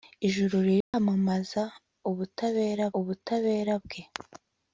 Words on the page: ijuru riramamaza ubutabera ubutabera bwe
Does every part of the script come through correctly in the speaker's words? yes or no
yes